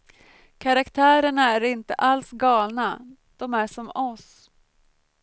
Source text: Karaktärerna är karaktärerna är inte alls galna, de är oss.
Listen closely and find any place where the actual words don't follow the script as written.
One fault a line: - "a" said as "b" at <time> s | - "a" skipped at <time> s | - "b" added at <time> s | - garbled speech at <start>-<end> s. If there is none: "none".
- "karaktärerna är" skipped at 1.6 s
- "som" added at 3.7 s